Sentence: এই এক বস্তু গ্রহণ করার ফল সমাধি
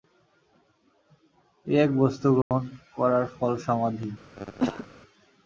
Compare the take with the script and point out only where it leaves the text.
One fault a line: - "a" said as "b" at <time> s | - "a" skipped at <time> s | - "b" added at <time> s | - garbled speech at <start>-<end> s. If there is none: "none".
none